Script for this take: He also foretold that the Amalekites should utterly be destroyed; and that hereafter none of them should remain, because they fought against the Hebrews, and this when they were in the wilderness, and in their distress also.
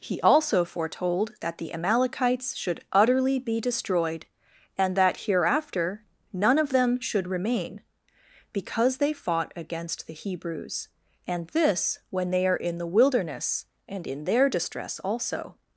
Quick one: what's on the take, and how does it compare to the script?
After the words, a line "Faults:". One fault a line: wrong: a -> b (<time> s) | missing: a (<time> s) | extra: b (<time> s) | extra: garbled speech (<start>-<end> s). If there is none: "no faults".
He also foretold that the Amalekites should utterly be destroyed; and that hereafter none of them should remain, because they fought against the Hebrews, and this when they are in the wilderness, and in their distress also.
Faults:
wrong: were -> are (12.5 s)